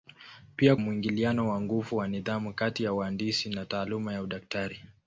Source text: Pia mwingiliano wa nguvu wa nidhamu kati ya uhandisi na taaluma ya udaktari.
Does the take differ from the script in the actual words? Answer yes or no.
no